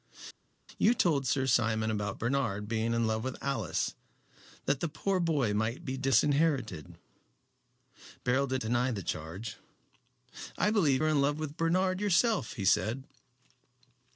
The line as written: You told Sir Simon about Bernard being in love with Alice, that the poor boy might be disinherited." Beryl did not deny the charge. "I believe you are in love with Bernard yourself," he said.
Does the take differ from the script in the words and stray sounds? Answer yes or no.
yes